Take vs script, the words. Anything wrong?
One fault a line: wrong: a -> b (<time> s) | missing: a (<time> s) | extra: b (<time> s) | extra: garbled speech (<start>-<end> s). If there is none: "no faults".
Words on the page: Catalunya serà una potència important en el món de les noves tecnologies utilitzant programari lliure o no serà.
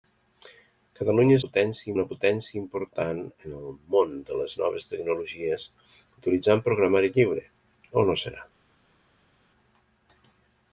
wrong: serà -> potència (1.4 s)